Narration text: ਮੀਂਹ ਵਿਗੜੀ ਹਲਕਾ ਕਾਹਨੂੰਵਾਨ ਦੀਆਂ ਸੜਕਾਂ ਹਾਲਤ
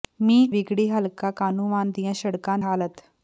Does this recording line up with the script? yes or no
yes